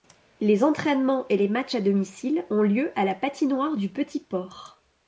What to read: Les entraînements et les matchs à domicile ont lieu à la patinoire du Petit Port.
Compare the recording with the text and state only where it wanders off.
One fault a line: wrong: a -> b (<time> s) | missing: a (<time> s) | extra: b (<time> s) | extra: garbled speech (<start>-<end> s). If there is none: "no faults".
no faults